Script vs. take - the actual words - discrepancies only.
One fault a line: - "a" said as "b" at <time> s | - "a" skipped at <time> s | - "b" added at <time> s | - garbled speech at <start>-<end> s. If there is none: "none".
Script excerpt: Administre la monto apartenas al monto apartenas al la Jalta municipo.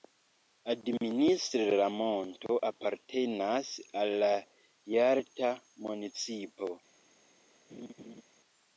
- "monto apartenas al" skipped at 4.2 s